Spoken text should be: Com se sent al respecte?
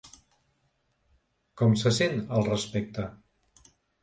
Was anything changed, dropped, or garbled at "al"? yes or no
no